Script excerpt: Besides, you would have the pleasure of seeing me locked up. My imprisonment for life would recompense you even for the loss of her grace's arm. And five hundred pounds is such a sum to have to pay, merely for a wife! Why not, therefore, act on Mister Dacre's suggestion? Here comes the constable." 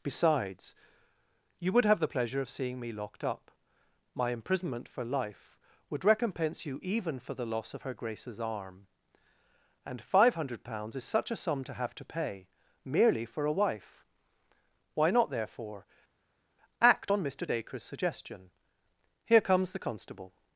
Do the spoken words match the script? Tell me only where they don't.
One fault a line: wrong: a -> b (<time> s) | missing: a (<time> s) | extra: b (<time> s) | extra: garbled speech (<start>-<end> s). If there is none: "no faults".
no faults